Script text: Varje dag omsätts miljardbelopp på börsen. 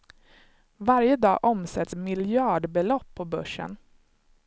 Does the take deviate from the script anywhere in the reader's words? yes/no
no